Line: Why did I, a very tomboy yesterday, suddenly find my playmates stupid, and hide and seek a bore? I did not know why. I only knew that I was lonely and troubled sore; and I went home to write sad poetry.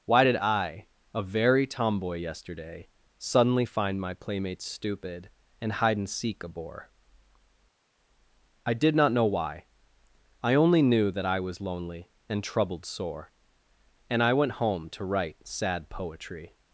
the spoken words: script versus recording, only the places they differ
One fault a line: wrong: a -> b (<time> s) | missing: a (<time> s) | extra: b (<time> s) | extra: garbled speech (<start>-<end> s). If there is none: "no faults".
no faults